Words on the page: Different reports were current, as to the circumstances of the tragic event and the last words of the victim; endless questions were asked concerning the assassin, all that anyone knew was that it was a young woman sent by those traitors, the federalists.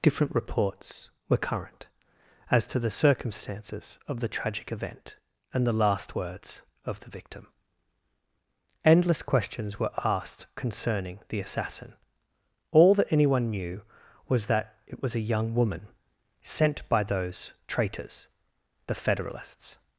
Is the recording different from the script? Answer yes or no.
no